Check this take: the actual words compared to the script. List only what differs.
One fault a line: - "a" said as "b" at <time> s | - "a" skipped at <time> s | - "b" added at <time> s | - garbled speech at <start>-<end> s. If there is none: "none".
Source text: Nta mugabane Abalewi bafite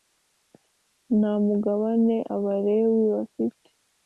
none